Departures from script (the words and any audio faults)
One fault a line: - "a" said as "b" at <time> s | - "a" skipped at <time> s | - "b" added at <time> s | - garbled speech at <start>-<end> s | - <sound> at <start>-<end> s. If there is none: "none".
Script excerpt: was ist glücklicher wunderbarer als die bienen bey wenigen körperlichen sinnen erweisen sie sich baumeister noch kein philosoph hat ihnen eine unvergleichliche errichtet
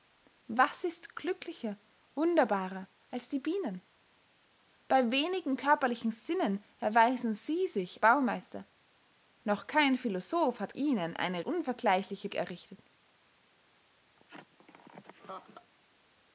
- laugh at 14.2-15.7 s